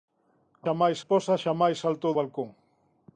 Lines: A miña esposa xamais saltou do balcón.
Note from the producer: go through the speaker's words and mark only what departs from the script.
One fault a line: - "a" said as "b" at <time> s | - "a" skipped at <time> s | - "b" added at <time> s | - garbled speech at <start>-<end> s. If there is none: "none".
- "miña" said as "xamais" at 0.6 s
- "do" skipped at 2.1 s